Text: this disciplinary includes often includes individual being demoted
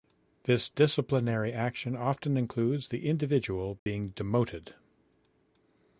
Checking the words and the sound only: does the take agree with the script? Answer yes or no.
no